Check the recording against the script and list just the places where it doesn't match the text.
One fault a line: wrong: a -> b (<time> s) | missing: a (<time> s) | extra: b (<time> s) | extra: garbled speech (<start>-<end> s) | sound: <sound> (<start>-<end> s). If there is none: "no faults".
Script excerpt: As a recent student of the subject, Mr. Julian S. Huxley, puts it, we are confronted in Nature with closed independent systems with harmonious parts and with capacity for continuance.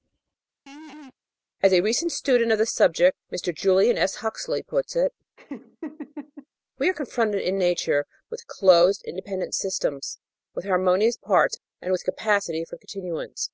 sound: laugh (0.7-1.1 s)
sound: laugh (5.4-6.5 s)